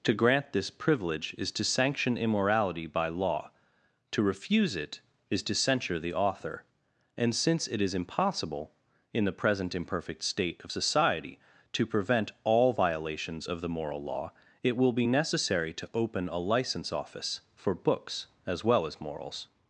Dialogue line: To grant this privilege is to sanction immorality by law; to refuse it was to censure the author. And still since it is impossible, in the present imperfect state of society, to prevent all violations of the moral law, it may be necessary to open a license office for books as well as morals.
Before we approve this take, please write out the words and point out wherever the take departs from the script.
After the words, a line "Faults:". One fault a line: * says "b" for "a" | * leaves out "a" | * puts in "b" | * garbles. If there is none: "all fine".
To grant this privilege is to sanction immorality by law; to refuse it is to censure the author. And since it is impossible, in the present imperfect state of society, to prevent all violations of the moral law, it will be necessary to open a license office for books as well as morals.
Faults:
* says "is" for "was"
* leaves out "still"
* says "will" for "may"